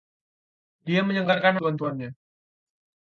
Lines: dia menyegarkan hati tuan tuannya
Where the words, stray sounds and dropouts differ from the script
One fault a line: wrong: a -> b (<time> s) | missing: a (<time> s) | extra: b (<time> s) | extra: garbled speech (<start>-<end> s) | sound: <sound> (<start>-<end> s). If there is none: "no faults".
missing: hati (1.6 s)